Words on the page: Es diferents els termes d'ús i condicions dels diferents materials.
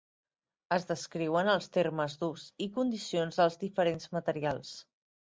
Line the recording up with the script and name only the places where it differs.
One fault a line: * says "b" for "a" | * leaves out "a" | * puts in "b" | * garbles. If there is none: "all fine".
* says "descriuen" for "diferents"